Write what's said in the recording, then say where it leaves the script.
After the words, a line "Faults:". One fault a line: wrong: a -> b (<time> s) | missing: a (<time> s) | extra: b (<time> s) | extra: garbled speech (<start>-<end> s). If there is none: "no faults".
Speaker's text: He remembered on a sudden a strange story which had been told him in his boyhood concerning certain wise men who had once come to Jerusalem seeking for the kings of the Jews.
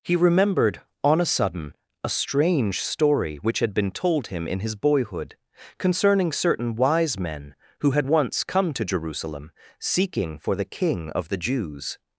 He remembered on a sudden a strange story which had been told him in his boyhood concerning certain wise men who had once come to Jerusalem seeking for the king of the Jews.
Faults:
wrong: kings -> king (10.7 s)